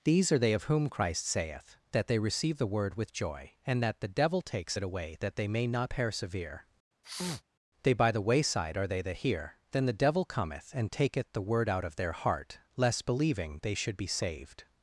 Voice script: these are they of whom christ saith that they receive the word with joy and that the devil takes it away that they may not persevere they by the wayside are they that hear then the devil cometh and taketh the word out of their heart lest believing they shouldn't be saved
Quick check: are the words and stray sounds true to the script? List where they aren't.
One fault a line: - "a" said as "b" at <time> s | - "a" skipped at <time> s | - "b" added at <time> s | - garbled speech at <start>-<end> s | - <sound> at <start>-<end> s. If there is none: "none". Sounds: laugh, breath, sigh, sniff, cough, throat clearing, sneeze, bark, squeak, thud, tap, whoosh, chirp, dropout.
- sneeze at 7.0-7.4 s
- "shouldn't" said as "should" at 13.7 s